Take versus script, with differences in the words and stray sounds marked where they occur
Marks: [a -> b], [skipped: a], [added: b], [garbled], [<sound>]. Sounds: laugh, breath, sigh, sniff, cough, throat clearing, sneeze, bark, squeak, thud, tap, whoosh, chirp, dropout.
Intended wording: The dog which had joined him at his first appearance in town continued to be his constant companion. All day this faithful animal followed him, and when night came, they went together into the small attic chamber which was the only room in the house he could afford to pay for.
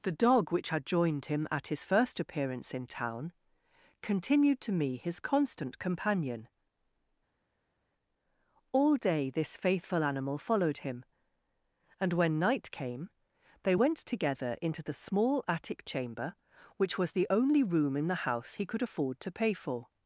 The dog which had joined him at his first appearance in town continued to [be -> me] his constant companion. All day this faithful animal followed him, and when night came, they went together into the small attic chamber which was the only room in the house he could afford to pay for.